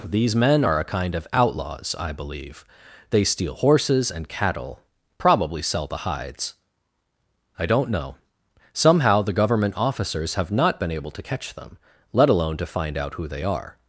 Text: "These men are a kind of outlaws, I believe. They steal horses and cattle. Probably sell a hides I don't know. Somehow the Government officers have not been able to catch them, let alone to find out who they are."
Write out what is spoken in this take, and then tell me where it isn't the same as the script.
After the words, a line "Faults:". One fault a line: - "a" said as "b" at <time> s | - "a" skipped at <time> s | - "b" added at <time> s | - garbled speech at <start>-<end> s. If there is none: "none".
"These men are a kind of outlaws, I believe. They steal horses and cattle. Probably sell the hides I don't know. Somehow the Government officers have not been able to catch them, let alone to find out who they are."
Faults:
- "a" said as "the" at 5.9 s